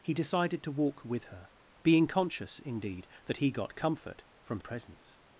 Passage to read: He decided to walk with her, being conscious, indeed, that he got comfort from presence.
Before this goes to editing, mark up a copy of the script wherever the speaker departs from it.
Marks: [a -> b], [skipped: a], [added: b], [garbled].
He decided to walk with her, being conscious, indeed, that he got comfort from presence.